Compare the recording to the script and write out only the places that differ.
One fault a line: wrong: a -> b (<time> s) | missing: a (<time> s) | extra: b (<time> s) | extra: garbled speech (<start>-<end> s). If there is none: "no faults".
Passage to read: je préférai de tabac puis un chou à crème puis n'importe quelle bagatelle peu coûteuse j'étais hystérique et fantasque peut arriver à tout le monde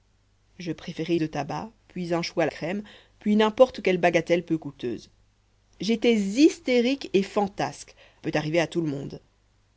no faults